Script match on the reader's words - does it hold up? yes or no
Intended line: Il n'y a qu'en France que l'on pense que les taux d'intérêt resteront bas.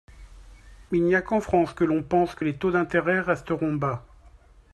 yes